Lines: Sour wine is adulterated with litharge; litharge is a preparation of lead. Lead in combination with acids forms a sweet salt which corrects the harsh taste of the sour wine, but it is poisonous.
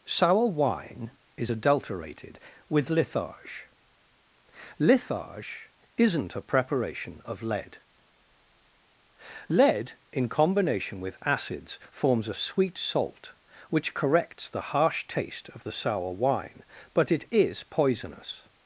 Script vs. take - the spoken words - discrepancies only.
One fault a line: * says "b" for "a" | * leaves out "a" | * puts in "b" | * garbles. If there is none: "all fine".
* says "isn't" for "is"